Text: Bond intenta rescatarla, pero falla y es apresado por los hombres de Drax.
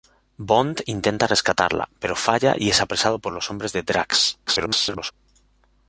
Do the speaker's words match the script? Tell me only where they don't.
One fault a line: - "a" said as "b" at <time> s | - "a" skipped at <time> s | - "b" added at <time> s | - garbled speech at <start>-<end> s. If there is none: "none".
- garbled speech at 4.5-5.1 s